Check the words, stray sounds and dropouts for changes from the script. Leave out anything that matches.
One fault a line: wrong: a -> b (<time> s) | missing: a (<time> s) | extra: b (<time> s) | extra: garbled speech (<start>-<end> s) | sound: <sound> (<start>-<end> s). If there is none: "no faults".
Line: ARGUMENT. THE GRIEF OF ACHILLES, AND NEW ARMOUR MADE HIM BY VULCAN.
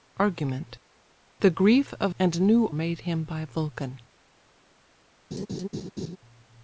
missing: ACHILLES (2.1 s)
missing: ARMOUR (2.7 s)
sound: laugh (5.3-6.2 s)